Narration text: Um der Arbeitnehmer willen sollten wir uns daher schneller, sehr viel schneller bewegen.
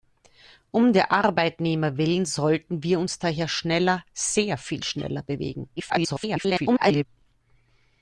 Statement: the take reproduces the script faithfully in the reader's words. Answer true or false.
false